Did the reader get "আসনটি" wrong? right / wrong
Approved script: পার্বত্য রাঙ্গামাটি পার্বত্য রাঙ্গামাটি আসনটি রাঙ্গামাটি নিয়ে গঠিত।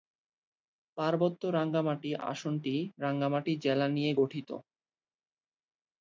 wrong